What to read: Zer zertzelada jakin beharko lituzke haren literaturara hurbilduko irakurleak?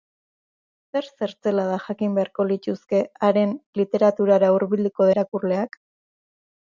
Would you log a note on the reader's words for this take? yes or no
no